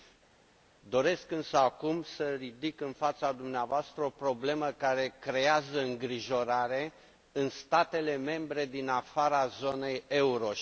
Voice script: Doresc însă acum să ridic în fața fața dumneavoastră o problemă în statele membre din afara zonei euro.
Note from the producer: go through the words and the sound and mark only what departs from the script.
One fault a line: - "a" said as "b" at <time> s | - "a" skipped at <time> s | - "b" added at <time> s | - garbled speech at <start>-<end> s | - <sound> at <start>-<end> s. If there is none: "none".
- "fața" skipped at 3.3 s
- "care creează îngrijorare" added at 4.7 s